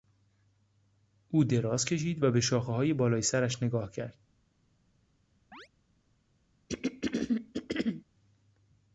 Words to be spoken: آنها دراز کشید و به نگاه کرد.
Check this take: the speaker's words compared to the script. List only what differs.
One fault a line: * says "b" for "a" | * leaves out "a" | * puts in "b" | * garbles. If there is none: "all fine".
* says "او" for "آنها"
* puts in "شاخههای بالای سرش"